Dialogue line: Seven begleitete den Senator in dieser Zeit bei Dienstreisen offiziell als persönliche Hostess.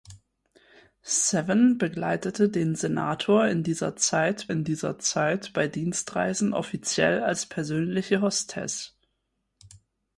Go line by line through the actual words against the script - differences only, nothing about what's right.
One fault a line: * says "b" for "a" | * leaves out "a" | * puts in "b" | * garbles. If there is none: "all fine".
* puts in "in dieser Zeit"